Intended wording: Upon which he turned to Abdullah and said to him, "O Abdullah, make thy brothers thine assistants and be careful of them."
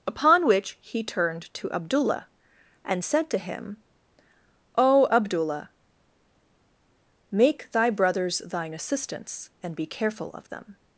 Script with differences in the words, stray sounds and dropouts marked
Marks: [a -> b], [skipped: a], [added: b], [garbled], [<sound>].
Upon which he turned to Abdullah and said to him, "O Abdullah, make thy brothers thine assistants and be careful of them."